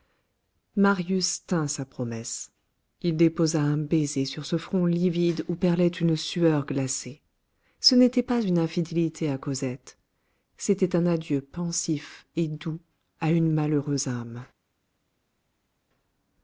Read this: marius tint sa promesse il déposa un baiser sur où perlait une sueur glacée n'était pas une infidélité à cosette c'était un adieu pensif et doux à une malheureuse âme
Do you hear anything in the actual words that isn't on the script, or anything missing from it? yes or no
yes